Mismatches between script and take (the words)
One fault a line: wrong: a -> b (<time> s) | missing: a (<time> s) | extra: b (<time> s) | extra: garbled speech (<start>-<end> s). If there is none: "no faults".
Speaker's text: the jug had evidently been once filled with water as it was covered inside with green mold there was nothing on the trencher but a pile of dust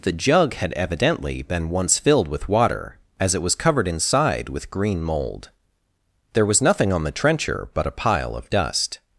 no faults